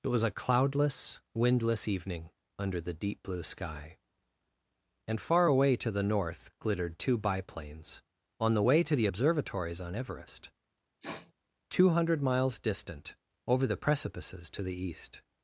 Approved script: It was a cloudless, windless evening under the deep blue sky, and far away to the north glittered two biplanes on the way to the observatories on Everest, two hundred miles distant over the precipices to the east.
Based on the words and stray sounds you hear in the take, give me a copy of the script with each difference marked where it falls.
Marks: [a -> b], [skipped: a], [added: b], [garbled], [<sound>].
It was a cloudless, windless evening under the deep blue sky, and far away to the north glittered two biplanes on the way to the observatories on Everest, [sniff] two hundred miles distant over the precipices to the east.